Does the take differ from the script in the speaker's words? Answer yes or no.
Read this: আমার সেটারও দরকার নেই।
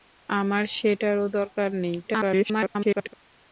yes